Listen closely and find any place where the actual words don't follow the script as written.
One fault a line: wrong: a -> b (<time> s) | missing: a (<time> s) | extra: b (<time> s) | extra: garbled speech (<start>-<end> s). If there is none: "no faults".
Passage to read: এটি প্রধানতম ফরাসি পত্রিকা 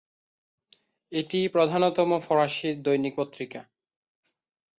extra: দৈনিক (2.8 s)